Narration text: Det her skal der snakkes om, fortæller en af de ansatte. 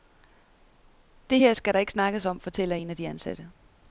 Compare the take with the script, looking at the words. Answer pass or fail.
fail